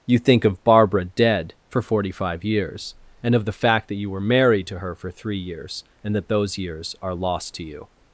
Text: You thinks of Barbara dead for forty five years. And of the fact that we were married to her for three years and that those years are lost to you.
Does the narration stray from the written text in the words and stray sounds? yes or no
yes